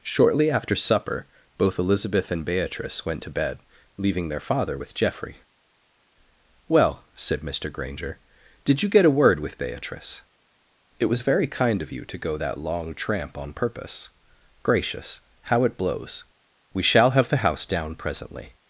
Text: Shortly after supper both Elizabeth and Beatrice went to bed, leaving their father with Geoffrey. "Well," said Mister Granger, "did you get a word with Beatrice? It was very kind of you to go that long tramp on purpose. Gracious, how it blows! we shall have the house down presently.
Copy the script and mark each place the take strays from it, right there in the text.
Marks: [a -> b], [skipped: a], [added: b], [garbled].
Shortly after supper both Elizabeth and Beatrice went to bed, leaving their father with Geoffrey. "Well," said Mister Granger, "did you get a word with Beatrice? It was very kind of you to go that long tramp on purpose. Gracious, how it blows! we shall have the house down presently.